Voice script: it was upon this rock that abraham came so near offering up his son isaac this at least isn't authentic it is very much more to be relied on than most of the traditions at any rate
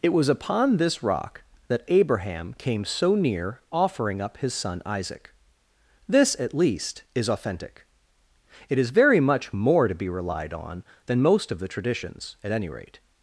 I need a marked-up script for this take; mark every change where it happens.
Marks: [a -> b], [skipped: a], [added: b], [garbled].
it was upon this rock that abraham came so near offering up his son isaac this at least [isn't -> is] authentic it is very much more to be relied on than most of the traditions at any rate